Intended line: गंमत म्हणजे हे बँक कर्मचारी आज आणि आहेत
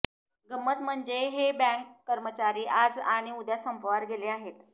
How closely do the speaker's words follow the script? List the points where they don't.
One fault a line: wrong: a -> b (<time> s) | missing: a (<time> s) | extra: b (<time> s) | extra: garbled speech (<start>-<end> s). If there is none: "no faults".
extra: उद्या संपावर गेले (3.3 s)